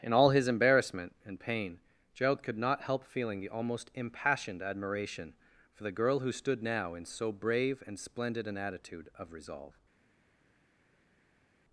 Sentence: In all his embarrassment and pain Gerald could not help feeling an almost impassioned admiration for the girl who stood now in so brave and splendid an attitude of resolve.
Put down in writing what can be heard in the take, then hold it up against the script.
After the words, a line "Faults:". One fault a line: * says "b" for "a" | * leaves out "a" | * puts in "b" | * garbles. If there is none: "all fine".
In all his embarrassment and pain Gerald could not help feeling the almost impassioned admiration for the girl who stood now in so brave and splendid an attitude of resolve.
Faults:
* says "the" for "an"